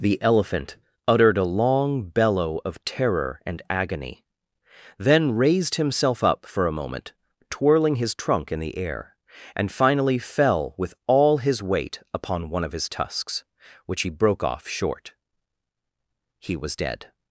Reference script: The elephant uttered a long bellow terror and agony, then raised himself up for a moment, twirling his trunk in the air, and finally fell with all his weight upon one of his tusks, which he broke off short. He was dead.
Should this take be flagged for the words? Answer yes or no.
yes